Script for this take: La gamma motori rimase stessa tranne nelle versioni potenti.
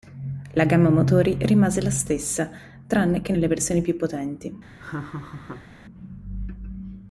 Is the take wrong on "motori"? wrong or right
right